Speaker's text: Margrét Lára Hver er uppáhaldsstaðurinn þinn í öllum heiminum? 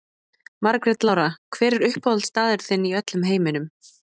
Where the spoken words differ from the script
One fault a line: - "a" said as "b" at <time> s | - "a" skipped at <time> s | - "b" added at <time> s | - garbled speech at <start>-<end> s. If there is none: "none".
none